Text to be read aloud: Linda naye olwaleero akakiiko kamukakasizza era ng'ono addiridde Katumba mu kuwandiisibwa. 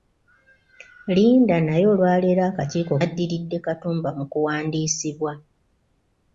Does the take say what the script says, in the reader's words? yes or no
no